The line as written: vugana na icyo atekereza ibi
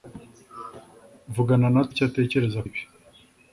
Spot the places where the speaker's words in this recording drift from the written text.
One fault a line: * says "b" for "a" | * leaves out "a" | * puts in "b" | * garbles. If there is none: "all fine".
all fine